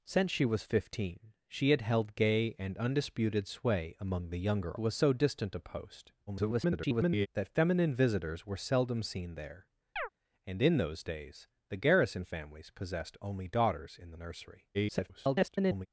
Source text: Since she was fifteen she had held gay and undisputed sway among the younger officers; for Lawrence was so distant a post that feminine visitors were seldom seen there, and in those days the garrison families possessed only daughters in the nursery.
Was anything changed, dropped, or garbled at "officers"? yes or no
yes